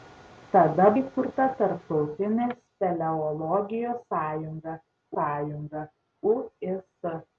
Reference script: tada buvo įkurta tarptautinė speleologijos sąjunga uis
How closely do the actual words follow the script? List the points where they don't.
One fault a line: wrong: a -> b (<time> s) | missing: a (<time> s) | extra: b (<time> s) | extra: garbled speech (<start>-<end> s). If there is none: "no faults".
missing: buvo (0.9 s)
extra: sąjunga (5.2 s)